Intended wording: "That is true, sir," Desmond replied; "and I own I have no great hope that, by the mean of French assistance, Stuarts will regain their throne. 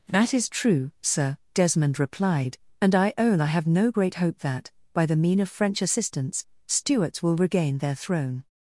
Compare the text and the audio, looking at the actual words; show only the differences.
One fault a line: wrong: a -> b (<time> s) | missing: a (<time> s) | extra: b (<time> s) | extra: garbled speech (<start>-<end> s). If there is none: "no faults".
no faults